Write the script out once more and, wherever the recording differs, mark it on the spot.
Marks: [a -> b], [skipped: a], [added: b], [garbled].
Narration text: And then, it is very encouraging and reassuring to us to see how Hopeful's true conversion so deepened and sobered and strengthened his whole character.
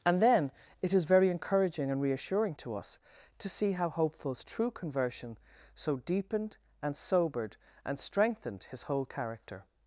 And then, it is very encouraging and reassuring to us to see how Hopeful's true conversion so deepened and sobered and strengthened his whole character.